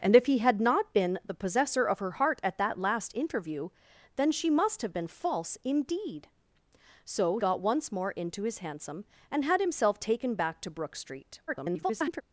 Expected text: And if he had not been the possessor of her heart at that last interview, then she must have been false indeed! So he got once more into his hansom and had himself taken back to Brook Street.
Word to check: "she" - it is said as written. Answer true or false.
true